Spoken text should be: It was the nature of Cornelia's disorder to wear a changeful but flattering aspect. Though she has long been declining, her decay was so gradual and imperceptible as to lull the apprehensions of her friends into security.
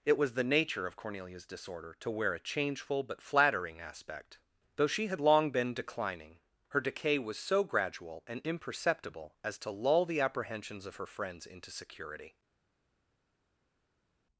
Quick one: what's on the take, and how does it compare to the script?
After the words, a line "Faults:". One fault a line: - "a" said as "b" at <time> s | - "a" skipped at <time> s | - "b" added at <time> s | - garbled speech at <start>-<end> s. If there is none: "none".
It was the nature of Cornelia's disorder to wear a changeful but flattering aspect. Though she had long been declining, her decay was so gradual and imperceptible as to lull the apprehensions of her friends into security.
Faults:
- "has" said as "had" at 5.1 s